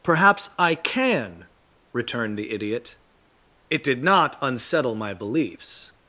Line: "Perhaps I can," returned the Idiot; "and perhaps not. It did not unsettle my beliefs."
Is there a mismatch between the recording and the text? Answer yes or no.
yes